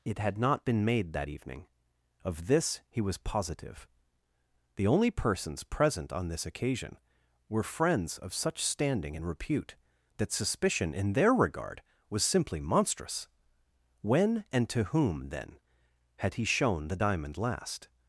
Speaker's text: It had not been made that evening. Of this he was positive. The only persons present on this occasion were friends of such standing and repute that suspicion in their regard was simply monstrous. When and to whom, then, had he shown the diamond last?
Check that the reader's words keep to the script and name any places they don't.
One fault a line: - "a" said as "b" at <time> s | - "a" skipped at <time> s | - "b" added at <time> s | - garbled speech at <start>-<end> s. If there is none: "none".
none